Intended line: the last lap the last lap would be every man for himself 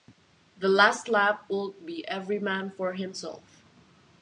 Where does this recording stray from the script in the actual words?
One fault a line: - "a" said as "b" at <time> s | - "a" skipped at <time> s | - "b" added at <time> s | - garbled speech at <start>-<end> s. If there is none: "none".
- "the last lap" skipped at 1.4 s